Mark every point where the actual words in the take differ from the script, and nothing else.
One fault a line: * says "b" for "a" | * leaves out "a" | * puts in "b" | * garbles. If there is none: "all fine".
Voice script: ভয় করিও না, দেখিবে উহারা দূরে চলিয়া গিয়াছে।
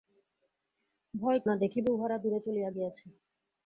* leaves out "করিও"